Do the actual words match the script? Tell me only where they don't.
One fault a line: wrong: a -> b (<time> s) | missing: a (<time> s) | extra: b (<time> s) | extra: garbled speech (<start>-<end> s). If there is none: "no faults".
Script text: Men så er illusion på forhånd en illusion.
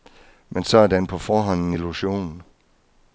wrong: illusion -> den (0.9 s)